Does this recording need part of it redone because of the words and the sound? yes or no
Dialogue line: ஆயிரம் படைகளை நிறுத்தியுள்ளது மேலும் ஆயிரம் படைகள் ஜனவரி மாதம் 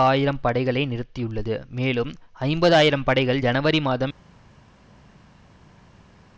yes